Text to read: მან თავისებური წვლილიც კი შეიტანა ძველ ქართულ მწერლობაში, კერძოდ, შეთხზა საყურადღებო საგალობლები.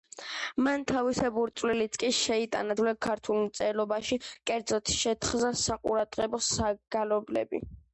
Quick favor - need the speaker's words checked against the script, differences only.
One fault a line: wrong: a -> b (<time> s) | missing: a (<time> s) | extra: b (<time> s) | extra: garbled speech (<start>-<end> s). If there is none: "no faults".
no faults